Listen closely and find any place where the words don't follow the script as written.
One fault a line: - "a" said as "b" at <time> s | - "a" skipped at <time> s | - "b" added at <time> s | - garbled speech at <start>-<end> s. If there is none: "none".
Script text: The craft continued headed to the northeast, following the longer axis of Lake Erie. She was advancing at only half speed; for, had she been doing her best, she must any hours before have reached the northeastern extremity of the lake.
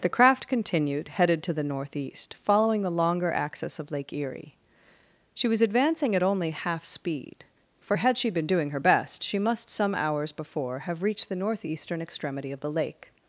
- "any" said as "some" at 9.7 s